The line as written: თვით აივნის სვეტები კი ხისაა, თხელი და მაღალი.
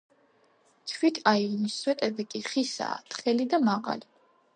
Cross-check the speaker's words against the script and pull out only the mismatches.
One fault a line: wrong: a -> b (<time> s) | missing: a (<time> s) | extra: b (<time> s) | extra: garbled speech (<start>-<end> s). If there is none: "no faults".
no faults